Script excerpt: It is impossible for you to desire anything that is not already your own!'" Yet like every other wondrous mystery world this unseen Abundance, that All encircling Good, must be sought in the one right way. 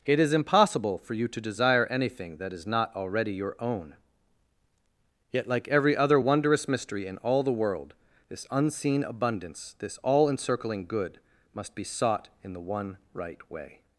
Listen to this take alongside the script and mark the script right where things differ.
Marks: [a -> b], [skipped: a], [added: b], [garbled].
It is impossible for you to desire anything that is not already your own!'" Yet like every other wondrous mystery [added: in all the] world this unseen Abundance, [that -> this] All encircling Good, must be sought in the one right way.